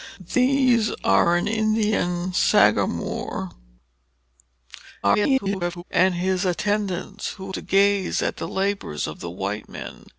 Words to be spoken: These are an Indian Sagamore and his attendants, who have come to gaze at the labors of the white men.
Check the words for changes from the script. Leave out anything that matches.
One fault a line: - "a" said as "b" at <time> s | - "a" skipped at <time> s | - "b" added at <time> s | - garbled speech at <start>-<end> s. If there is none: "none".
- garbled speech at 5.0-5.8 s
- "have come" skipped at 7.5 s